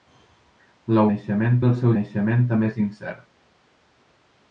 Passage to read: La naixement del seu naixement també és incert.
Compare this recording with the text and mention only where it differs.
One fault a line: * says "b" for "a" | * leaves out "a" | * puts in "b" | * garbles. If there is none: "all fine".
all fine